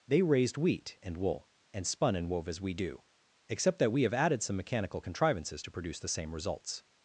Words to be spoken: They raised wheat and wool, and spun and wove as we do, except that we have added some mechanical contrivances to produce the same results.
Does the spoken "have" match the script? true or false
true